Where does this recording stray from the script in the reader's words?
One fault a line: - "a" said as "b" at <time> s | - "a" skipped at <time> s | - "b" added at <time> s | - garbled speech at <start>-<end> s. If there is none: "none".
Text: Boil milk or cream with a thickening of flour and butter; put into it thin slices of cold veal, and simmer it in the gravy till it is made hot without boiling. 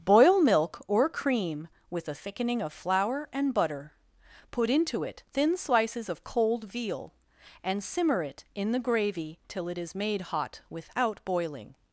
none